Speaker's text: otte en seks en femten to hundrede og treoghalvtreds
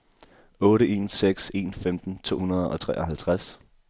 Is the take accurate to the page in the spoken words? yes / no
yes